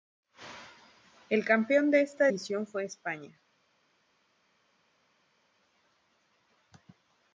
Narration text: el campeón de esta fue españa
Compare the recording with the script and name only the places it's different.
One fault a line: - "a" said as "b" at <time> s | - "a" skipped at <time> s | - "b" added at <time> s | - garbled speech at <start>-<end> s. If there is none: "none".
- "edición" added at 2.2 s